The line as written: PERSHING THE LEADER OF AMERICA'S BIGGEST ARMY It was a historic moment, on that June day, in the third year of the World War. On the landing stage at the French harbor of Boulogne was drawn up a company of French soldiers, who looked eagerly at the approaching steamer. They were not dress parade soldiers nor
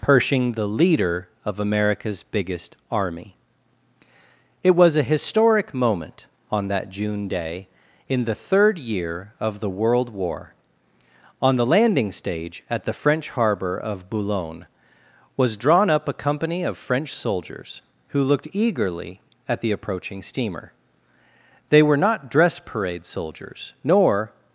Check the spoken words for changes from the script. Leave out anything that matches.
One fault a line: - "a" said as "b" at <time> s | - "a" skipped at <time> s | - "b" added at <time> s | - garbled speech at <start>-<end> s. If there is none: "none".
none